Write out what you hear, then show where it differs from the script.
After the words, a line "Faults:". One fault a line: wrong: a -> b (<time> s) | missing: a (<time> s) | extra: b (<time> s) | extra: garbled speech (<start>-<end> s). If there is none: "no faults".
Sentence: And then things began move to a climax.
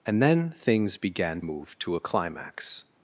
And then things began move to a climax.
Faults:
no faults